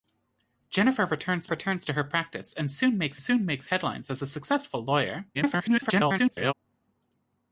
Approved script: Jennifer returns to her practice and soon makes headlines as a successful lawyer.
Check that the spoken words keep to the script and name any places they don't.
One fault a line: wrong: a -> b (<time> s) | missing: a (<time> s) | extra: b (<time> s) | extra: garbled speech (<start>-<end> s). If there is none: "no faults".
extra: returns (1.5 s)
extra: soon makes (3.2 s)
extra: garbled speech (5.3-6.5 s)